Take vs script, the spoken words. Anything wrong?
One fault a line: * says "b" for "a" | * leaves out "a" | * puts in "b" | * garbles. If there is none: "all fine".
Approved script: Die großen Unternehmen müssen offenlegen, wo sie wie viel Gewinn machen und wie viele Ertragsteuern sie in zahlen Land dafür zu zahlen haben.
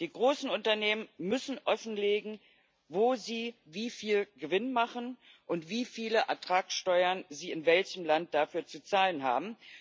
* says "welchem" for "zahlen"